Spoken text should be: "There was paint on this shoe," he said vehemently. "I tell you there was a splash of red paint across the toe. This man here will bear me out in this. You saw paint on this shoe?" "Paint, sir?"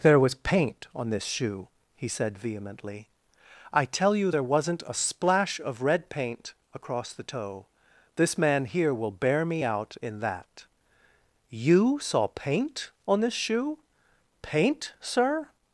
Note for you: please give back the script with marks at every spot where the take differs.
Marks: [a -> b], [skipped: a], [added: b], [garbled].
"There was paint on this shoe," he said vehemently. "I tell you there [was -> wasn't] a splash of red paint across the toe. This man here will bear me out in [this. -> that] You saw paint on this shoe?" "Paint, sir?"